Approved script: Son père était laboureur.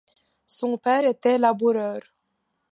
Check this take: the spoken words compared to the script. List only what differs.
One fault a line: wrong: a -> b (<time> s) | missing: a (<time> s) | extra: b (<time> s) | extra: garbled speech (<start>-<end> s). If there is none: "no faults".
no faults